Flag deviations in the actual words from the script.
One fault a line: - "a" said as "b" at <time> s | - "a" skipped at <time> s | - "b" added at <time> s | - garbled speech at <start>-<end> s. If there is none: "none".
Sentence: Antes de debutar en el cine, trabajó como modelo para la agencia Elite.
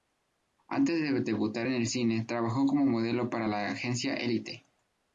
none